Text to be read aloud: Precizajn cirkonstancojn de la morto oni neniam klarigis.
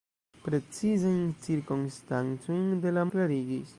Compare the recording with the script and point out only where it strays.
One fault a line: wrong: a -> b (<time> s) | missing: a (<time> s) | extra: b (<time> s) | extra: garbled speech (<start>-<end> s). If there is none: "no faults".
missing: morto oni neniam (3.0 s)